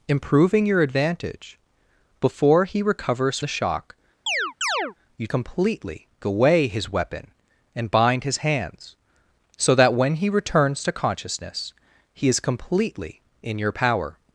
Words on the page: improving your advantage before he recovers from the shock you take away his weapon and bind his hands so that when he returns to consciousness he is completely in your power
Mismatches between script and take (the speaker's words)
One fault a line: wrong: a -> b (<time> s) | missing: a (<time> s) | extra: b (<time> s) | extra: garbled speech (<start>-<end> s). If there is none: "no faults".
missing: from (3.4 s)
wrong: take -> completely (5.3 s)